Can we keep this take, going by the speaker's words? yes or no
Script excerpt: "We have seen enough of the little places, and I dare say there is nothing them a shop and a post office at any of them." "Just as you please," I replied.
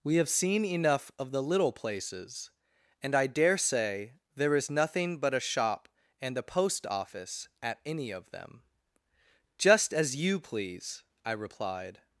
no